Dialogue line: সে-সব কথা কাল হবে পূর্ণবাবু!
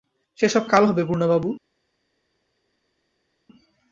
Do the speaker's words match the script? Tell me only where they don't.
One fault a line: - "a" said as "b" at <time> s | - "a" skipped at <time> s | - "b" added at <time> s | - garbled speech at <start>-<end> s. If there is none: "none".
- "কথা" skipped at 0.6 s